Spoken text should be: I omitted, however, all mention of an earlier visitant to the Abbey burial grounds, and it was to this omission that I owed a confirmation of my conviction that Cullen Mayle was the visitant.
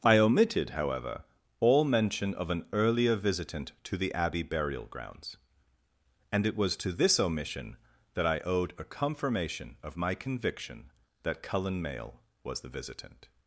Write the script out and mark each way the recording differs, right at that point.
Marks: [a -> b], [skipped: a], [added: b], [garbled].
I omitted, however, all mention of an earlier visitant to the Abbey burial grounds, and it was to this omission that I owed a confirmation of my conviction that Cullen Mayle was the visitant.